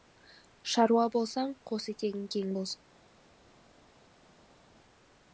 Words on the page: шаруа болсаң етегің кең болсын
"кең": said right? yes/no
yes